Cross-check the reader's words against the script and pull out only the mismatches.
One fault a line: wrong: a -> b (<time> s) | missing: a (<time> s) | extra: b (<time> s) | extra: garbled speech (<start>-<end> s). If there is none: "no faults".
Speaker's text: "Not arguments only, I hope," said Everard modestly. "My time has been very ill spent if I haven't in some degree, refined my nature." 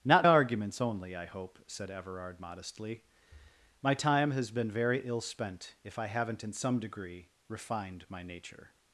no faults